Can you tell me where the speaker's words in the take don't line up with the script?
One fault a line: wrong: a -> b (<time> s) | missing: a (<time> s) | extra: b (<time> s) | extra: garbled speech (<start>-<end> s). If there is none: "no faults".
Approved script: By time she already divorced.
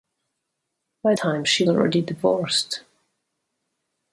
no faults